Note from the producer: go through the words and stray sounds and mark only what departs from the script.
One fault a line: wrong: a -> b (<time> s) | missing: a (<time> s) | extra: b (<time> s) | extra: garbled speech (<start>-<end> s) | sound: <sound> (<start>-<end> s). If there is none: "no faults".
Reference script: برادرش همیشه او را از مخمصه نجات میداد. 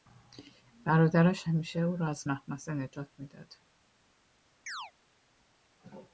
sound: chirp (4.7-4.9 s)